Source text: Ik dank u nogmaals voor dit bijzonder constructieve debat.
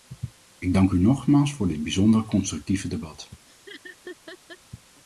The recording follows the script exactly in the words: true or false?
true